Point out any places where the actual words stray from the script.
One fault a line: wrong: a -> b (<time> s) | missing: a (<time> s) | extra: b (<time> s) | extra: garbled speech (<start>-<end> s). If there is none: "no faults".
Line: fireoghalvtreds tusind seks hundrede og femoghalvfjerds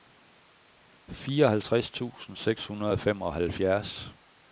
no faults